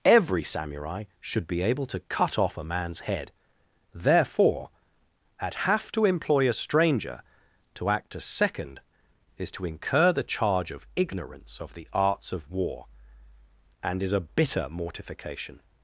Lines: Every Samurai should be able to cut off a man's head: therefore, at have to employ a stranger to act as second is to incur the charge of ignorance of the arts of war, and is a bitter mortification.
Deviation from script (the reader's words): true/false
false